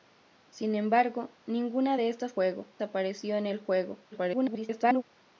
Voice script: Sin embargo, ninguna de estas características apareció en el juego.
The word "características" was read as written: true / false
false